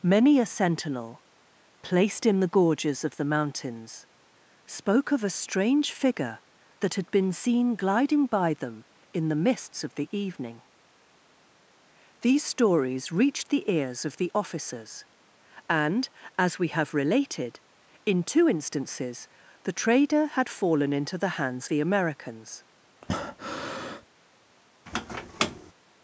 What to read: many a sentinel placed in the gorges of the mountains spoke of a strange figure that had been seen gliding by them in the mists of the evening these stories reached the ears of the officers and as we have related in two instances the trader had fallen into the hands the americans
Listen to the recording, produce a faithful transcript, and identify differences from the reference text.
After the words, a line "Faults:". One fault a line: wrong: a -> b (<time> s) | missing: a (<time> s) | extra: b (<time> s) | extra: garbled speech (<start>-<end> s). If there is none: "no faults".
many a sentinel placed in the gorges of the mountains spoke of a strange figure that had been seen gliding by them in the mists of the evening these stories reached the ears of the officers and as we have related in two instances the trader had fallen into the hands the americans
Faults:
no faults